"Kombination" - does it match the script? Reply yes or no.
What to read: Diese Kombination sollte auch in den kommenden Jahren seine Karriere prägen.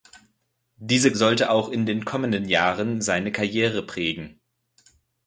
no